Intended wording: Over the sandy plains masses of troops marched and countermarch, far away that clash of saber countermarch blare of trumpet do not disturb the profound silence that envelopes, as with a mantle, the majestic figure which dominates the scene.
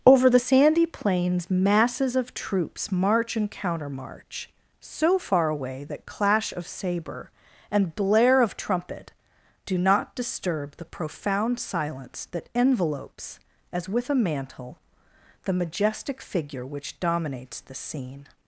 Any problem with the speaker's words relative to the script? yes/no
yes